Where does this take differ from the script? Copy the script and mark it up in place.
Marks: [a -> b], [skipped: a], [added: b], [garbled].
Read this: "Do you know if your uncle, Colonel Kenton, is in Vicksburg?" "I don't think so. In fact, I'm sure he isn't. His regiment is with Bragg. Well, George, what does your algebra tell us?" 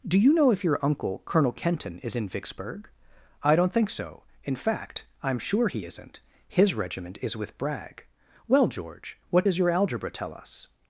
"Do you know if your uncle, Colonel Kenton, is in Vicksburg?" "I don't think so. In fact, I'm sure he isn't. His regiment is with Bragg. Well, George, what does your algebra tell us?"